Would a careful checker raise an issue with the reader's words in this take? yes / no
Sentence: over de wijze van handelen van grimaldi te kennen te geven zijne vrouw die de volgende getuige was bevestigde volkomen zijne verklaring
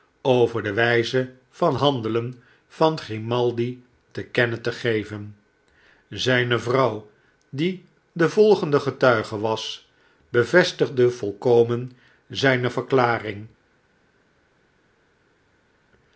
no